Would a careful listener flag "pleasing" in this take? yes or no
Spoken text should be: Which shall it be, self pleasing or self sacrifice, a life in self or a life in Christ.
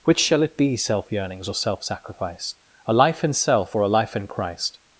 yes